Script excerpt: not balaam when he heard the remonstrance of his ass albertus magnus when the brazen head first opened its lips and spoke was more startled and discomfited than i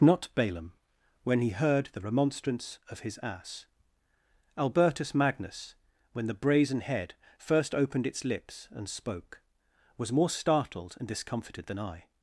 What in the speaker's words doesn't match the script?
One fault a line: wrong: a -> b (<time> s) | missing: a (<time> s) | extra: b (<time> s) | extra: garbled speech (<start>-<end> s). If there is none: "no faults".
no faults